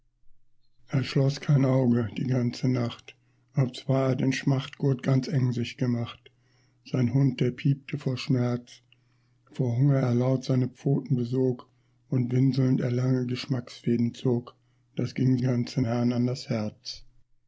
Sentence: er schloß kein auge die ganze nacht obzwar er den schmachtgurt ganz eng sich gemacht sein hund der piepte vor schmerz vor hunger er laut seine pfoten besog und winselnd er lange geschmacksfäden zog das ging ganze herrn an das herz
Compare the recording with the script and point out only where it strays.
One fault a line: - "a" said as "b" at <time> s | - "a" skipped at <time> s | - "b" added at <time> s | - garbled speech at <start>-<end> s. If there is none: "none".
none